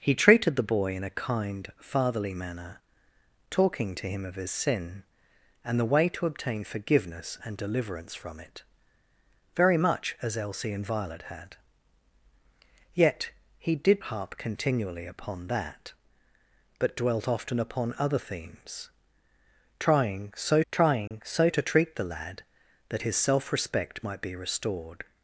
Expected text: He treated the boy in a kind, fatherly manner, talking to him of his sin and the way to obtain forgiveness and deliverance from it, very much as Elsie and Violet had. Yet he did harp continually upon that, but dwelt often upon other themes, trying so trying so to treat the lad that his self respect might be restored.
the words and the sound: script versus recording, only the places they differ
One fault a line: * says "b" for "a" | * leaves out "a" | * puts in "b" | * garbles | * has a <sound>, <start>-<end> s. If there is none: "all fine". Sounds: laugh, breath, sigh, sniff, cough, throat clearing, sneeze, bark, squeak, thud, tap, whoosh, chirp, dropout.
* has a dropout, 21.1-21.1 s